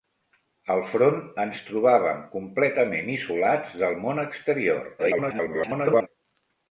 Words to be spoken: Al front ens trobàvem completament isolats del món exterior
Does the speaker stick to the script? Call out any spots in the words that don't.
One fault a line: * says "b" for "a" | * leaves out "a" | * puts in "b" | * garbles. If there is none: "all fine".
* garbles